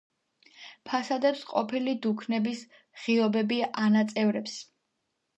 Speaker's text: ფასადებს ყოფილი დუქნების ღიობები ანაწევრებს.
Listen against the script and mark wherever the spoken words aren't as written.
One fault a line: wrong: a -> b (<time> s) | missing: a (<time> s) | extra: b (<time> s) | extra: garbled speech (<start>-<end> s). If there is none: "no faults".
no faults